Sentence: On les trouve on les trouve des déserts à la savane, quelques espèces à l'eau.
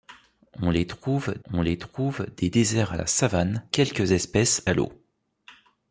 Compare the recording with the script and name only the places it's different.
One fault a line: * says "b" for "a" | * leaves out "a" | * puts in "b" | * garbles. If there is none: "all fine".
all fine